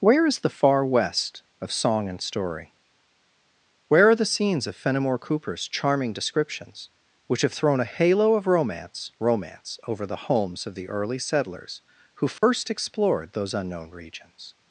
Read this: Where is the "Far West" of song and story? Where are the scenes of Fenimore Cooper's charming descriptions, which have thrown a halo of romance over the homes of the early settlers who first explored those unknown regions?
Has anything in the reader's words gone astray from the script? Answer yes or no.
yes